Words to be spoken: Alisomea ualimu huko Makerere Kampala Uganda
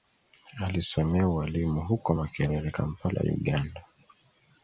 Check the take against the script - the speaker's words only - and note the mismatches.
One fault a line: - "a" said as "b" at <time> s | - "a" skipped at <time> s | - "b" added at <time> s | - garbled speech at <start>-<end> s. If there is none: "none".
none